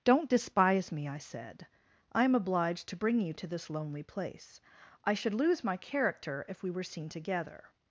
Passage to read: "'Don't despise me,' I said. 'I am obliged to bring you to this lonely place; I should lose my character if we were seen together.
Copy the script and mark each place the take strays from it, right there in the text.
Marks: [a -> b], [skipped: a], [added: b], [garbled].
"'Don't despise me,' I said. 'I am obliged to bring you to this lonely place; I should lose my character if we were seen together.